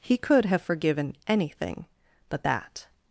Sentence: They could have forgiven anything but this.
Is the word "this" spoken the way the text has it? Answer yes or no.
no